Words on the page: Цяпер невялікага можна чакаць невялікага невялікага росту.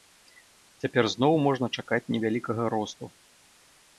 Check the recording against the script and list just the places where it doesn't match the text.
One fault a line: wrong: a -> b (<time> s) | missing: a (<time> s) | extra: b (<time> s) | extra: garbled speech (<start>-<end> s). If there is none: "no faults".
wrong: невялікага -> зноў (1.1 s)
missing: невялікага (2.6 s)